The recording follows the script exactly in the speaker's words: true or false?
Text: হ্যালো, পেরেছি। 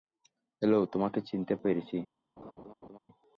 false